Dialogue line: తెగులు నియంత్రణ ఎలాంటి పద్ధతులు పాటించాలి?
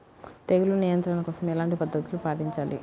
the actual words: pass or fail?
fail